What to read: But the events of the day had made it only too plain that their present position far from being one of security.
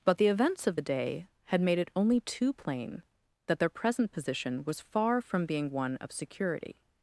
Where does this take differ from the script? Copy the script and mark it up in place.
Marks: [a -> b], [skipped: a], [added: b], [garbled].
But the events of the day had made it only too plain that their present position [added: was] far from being one of security.